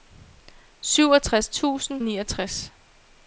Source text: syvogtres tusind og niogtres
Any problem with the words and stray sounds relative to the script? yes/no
no